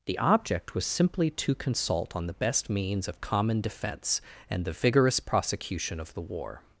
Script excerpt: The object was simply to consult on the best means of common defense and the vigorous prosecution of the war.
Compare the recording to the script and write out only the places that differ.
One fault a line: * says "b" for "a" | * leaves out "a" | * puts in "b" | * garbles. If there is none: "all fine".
all fine